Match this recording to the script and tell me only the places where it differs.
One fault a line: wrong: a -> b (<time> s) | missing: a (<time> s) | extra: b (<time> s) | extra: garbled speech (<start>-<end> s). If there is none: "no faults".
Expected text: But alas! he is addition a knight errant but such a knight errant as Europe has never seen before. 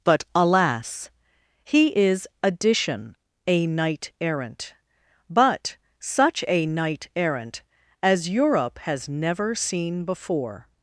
no faults